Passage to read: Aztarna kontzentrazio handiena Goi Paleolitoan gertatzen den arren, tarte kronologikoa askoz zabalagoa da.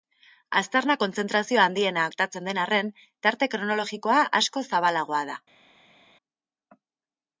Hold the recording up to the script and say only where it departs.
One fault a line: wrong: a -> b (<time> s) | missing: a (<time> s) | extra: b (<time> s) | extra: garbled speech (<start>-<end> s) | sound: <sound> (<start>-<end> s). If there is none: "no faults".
missing: Goi Paleolitoan (2.0 s)